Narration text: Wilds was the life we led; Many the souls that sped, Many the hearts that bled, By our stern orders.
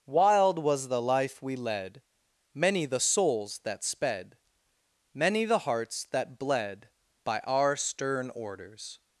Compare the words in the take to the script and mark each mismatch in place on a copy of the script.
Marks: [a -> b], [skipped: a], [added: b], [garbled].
[Wilds -> Wild] was the life we led; Many the souls that sped, Many the hearts that bled, By our stern orders.